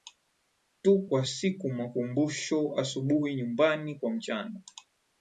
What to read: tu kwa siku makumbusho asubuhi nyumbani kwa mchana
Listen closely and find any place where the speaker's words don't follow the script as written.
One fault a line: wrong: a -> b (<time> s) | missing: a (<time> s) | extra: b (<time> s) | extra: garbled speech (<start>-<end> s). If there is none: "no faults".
no faults